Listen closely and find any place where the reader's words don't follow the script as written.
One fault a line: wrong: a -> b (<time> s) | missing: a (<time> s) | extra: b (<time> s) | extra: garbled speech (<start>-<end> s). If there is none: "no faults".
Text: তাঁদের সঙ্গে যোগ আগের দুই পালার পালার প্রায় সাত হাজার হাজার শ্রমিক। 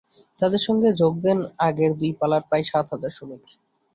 extra: দেন (1.2 s)
missing: পালার (2.4 s)
missing: হাজার (3.1 s)